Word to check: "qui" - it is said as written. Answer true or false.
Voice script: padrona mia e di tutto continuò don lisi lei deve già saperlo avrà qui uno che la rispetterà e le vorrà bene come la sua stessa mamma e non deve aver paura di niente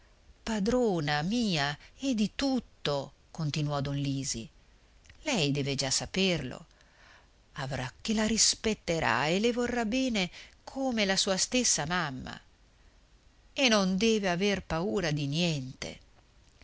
false